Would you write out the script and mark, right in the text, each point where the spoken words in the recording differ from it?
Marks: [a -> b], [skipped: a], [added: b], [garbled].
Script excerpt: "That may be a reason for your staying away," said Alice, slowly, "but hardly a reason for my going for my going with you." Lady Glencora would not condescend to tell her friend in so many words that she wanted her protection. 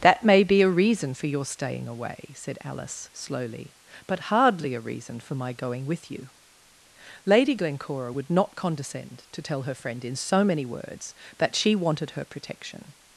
"That may be a reason for your staying away," said Alice, slowly, "but hardly a reason for my going [skipped: for my going] with you." Lady Glencora would not condescend to tell her friend in so many words that she wanted her protection.